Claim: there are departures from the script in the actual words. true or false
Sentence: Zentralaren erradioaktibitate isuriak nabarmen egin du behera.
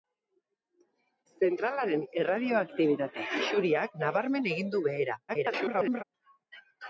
true